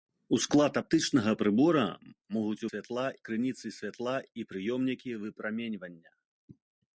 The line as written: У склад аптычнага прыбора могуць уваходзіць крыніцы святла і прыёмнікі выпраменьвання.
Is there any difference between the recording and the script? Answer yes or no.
yes